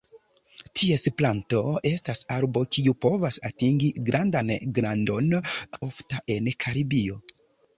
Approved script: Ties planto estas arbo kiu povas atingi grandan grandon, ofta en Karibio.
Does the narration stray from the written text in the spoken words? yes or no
no